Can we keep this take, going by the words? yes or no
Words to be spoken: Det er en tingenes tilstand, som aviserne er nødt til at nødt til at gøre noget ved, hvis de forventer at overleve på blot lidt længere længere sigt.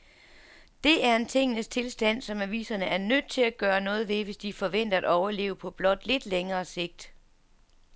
no